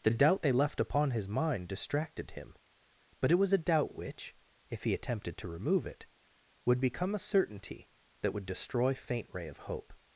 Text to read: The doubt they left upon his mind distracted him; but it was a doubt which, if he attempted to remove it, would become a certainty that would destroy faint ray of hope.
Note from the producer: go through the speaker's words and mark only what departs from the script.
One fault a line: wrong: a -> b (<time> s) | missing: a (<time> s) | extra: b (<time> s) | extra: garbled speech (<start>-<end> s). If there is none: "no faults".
no faults